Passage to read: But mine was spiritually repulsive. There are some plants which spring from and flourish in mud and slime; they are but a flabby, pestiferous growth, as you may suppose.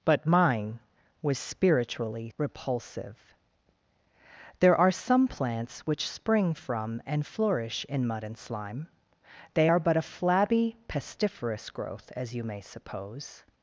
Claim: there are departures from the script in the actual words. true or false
false